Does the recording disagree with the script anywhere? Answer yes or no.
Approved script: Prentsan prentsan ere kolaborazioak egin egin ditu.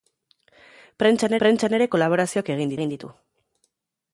no